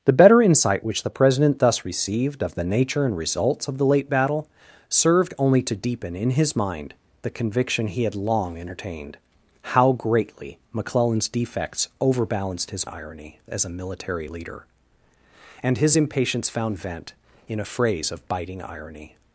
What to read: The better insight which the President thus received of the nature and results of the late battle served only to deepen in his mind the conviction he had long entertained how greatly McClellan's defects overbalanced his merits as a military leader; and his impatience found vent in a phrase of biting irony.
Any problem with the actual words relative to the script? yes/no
yes